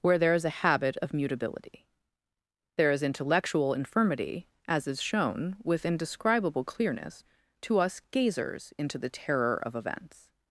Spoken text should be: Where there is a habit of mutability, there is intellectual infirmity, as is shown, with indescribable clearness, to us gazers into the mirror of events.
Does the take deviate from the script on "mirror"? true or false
true